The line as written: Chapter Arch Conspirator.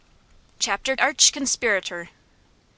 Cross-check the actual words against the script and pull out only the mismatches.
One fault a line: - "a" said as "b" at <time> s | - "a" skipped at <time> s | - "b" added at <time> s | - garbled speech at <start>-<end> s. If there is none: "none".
none